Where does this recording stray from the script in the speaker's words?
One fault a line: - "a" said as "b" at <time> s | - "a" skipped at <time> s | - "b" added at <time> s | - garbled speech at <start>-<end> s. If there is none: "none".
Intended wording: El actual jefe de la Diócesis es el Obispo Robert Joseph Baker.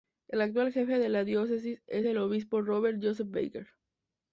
none